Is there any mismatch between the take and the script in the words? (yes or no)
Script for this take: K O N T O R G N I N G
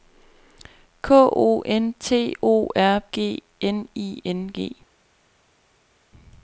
no